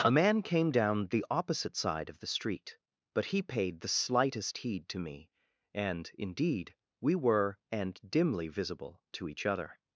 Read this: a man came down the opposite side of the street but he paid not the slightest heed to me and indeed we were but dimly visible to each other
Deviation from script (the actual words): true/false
true